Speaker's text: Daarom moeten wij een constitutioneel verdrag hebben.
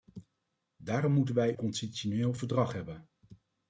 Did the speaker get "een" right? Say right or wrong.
wrong